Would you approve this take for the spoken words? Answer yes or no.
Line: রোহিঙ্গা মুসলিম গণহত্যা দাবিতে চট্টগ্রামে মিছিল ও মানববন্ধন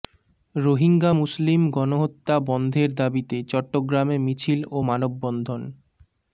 no